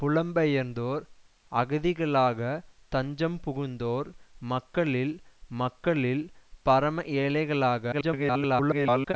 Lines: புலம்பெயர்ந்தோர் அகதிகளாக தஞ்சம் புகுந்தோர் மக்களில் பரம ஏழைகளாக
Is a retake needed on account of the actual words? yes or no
yes